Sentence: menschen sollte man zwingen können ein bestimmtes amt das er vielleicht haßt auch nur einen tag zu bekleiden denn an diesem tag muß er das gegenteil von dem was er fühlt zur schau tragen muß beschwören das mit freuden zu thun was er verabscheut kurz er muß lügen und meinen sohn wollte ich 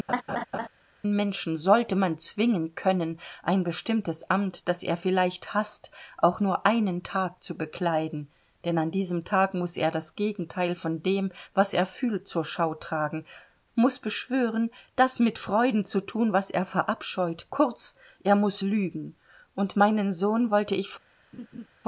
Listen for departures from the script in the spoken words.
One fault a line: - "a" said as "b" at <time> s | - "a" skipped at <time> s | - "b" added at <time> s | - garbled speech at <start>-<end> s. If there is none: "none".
none